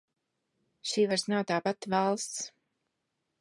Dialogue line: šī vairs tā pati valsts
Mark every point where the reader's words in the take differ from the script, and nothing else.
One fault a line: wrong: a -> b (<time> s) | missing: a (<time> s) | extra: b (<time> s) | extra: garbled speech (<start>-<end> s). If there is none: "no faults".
extra: nav (1.3 s)